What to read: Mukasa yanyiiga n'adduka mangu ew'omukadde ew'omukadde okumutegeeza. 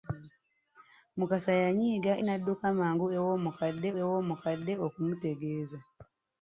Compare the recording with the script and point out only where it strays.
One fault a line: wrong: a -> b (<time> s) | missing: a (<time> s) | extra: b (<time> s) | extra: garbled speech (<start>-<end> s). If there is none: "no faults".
no faults